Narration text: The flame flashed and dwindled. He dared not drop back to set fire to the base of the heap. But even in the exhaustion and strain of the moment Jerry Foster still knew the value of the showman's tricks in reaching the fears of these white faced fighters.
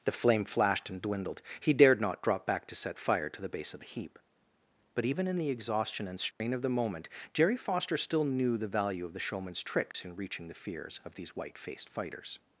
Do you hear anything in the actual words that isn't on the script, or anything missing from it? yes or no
no